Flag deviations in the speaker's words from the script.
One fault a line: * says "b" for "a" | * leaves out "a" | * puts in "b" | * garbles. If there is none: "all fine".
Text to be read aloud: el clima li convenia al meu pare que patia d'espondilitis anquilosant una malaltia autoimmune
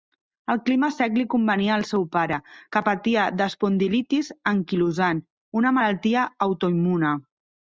* puts in "sec"
* says "seu" for "meu"